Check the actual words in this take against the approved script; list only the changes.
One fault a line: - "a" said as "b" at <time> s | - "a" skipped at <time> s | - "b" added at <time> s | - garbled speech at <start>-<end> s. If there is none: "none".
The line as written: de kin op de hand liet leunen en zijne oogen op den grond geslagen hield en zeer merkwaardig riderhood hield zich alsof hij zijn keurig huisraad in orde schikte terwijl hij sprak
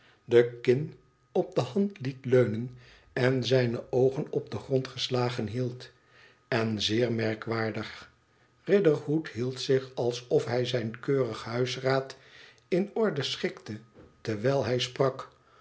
none